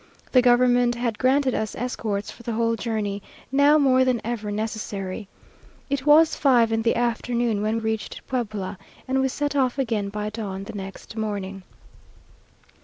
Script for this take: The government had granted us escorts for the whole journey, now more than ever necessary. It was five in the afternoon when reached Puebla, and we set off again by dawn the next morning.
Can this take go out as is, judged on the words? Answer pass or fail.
pass